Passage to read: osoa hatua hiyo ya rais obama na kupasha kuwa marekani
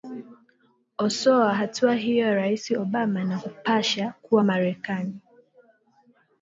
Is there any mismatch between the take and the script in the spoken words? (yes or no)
no